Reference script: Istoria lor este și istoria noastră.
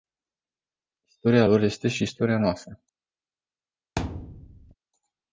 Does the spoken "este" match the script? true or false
true